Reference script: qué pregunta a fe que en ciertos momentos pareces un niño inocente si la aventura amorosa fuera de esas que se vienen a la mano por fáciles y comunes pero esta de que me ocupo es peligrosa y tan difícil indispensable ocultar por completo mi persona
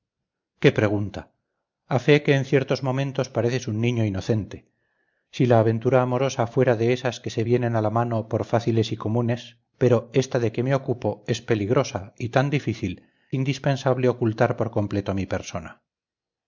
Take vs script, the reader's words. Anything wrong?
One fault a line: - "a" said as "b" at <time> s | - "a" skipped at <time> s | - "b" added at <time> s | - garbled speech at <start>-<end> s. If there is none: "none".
none